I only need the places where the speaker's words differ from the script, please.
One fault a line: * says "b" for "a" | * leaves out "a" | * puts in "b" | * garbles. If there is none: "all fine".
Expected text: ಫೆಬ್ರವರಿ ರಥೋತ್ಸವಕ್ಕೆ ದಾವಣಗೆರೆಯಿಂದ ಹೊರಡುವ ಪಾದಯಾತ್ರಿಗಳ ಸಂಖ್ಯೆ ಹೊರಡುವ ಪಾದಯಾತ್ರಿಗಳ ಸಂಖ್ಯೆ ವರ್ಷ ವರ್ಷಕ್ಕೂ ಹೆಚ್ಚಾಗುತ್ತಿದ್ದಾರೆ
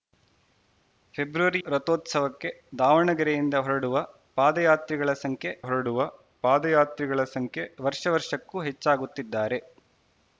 all fine